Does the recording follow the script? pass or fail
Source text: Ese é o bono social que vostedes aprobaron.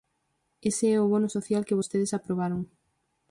pass